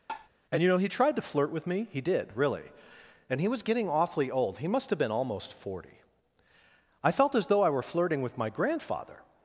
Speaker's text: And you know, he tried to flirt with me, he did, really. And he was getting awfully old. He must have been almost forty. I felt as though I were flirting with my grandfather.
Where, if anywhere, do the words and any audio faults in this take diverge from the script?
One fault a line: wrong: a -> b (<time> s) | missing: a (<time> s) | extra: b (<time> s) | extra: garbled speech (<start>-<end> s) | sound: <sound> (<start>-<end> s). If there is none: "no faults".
sound: tap (0.1-0.3 s)